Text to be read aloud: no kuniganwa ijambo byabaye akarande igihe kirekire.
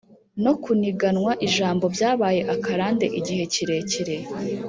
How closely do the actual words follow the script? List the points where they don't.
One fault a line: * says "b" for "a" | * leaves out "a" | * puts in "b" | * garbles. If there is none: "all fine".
all fine